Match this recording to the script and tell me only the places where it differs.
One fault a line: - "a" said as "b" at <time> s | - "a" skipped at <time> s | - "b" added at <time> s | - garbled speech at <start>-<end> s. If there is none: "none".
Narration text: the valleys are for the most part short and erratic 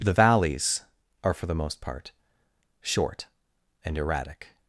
none